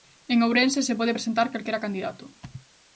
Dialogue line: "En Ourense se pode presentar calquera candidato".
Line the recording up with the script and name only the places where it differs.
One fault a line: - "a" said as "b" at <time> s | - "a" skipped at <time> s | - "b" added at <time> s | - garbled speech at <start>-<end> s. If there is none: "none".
none